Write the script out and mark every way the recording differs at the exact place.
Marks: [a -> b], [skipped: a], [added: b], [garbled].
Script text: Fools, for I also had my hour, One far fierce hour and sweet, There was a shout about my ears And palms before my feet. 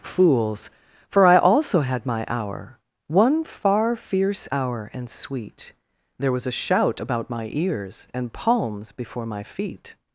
Fools, for I also had my hour, One far fierce hour and sweet, There was a shout about my ears And palms before my feet.